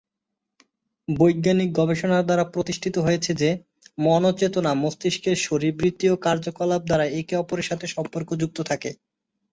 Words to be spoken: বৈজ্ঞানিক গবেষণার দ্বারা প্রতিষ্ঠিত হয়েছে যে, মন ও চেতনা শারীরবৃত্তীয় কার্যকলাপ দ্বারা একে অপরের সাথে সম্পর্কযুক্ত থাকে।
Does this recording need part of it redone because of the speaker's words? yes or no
yes